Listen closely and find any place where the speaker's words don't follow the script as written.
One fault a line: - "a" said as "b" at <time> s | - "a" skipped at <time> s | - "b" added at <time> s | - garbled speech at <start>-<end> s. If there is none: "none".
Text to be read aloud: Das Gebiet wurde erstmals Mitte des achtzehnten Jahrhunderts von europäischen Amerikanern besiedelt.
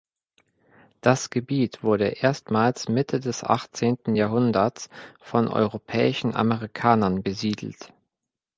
none